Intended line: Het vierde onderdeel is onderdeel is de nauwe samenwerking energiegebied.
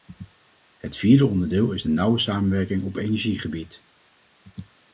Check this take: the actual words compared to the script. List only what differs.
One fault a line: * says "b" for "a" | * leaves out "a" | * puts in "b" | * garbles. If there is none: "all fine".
* leaves out "onderdeel is"
* puts in "op"